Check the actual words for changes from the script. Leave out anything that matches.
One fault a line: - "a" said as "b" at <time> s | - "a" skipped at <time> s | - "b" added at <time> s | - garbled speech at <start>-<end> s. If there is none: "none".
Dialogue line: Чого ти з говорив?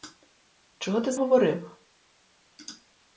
none